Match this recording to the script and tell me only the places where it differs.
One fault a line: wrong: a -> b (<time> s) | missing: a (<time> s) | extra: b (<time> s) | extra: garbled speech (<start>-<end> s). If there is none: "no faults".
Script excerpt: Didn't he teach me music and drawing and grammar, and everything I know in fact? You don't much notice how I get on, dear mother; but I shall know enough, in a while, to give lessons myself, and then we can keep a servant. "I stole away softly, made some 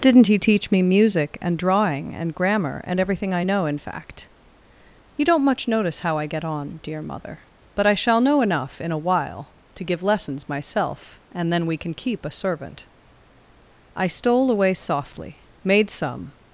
no faults